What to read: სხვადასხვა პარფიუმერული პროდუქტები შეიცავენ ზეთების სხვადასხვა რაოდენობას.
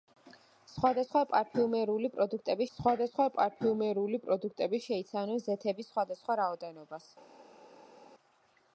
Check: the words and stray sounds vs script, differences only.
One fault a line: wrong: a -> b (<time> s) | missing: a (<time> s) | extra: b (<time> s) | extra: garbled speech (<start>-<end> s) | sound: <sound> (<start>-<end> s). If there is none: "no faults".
extra: სხვადასხვა პარფიუმერული პროდუქტები (2.8 s)